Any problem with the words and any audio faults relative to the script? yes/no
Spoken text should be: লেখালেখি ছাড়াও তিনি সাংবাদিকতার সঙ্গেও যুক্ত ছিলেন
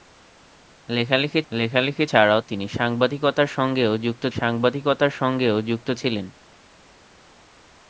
yes